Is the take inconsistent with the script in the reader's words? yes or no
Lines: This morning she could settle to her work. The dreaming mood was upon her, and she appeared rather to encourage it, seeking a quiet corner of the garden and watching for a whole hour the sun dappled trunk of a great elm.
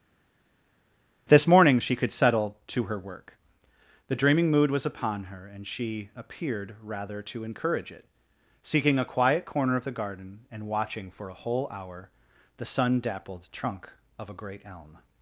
no